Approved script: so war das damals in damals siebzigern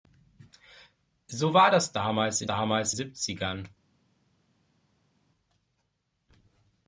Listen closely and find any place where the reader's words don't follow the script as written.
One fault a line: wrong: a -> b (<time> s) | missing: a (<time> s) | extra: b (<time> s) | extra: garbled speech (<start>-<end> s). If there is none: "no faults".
no faults